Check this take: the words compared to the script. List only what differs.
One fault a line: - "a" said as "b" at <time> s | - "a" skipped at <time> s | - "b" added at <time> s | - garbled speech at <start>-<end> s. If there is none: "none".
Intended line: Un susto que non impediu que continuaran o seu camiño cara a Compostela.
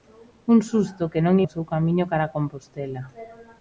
- "impediu que continuaran" skipped at 1.4 s